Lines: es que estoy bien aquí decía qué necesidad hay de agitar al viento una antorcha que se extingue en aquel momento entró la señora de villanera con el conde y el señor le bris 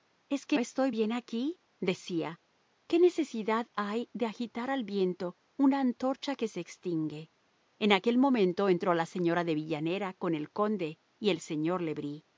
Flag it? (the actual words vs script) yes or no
no